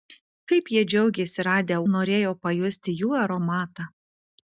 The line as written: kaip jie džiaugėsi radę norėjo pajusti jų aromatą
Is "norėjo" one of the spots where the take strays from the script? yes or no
no